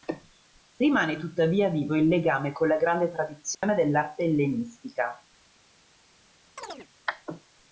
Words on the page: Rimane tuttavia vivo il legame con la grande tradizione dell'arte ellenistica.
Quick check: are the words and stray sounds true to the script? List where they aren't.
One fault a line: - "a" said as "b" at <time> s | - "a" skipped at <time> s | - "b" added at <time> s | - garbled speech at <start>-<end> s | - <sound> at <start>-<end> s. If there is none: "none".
- dropout at 3.5-3.6 s
- chirp at 6.6-6.9 s